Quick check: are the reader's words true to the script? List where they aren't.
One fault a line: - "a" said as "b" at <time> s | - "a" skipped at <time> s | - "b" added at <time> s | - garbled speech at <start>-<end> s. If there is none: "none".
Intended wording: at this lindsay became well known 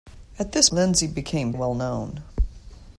none